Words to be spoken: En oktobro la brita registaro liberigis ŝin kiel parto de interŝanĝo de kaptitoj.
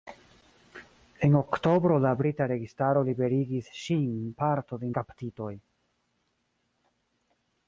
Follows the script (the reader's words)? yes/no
no